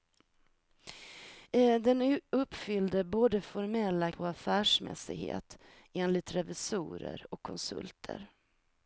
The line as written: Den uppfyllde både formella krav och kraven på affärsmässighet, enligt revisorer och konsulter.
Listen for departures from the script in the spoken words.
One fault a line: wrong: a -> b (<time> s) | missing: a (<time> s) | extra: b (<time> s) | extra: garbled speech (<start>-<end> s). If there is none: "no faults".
missing: krav och kraven (4.1 s)